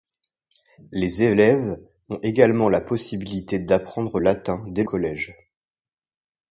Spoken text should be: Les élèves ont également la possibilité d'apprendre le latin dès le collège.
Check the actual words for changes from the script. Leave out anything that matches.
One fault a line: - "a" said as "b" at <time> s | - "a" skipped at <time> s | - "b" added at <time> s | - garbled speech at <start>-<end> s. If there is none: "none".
- "le" skipped at 4.2 s
- "le" skipped at 4.8 s